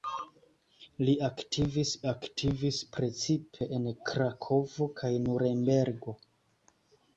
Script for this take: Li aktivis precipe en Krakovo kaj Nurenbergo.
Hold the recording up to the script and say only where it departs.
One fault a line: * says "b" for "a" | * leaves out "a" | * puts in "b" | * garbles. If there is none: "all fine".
* puts in "aktivis"